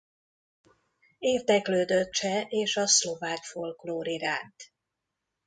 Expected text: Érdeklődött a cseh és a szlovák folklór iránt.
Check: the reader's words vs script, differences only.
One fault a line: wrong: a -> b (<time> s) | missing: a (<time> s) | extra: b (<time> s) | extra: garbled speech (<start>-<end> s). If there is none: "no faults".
missing: a (2.1 s)